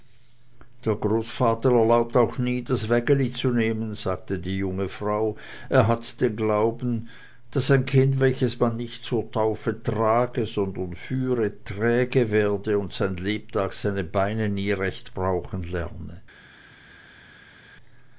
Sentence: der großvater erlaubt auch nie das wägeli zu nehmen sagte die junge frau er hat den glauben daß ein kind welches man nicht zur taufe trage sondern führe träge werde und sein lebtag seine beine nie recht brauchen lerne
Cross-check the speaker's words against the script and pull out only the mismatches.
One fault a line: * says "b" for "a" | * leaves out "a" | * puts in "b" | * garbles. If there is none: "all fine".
all fine